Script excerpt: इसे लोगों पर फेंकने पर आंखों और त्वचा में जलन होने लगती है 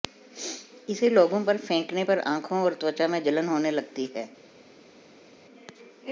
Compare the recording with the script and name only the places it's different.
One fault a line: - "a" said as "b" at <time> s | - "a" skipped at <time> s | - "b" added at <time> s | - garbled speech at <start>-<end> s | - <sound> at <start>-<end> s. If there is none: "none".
none